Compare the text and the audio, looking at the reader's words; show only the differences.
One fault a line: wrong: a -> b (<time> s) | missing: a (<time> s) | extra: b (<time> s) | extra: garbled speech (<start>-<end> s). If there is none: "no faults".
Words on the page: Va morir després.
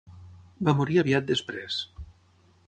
extra: aviat (1.0 s)